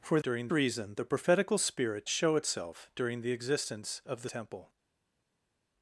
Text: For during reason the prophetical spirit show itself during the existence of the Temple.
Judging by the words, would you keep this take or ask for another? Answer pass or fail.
pass